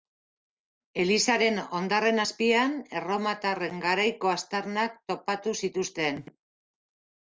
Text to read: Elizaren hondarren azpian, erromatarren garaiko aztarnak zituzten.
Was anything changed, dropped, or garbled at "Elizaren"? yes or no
no